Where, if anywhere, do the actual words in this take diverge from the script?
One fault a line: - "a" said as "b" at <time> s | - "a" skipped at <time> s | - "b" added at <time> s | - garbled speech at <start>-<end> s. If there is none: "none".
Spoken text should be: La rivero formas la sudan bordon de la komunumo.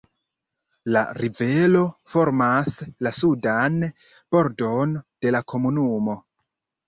none